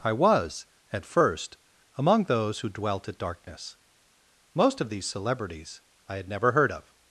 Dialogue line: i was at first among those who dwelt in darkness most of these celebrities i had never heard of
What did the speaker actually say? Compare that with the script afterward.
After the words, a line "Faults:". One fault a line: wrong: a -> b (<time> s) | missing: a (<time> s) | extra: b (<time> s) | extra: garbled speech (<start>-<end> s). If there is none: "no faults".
i was at first among those who dwelt at darkness most of these celebrities i had never heard of
Faults:
wrong: in -> at (3.1 s)